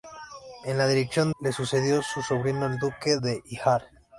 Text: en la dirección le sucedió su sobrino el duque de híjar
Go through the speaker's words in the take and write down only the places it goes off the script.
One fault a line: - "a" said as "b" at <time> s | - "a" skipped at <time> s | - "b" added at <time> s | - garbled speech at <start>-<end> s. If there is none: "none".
none